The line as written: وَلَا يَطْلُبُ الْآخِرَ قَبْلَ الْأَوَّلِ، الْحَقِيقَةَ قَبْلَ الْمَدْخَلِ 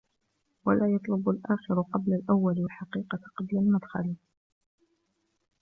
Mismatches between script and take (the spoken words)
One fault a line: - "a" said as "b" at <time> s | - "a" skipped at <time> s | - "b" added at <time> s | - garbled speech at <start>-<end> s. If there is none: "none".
none